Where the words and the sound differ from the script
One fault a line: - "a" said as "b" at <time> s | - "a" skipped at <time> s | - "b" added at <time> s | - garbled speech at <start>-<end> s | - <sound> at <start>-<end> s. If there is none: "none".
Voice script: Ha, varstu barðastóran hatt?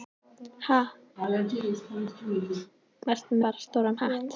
- laugh at 1.2-2.7 s